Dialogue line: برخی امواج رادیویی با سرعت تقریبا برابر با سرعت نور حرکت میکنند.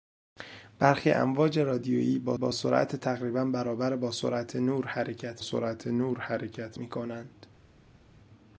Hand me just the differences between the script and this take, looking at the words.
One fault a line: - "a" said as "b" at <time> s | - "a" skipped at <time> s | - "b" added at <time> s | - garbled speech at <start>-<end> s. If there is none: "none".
- "با" added at 2.3 s
- "سرعت نور حرکت" added at 5.4 s